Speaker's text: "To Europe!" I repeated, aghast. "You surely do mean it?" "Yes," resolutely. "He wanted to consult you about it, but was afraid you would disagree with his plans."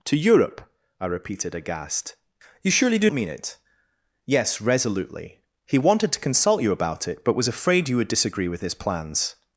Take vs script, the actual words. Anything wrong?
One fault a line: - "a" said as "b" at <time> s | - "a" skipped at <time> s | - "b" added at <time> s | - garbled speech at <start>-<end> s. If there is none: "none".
none